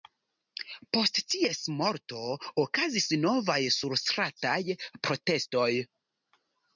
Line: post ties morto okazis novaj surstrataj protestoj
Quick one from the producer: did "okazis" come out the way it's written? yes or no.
yes